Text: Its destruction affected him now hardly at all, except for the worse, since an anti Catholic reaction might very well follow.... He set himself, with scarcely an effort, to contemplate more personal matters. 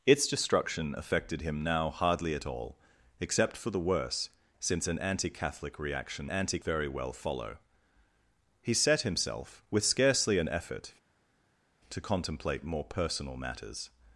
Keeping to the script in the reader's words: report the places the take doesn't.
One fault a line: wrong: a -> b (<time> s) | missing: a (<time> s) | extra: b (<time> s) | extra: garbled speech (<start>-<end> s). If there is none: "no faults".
wrong: might -> anti (6.3 s)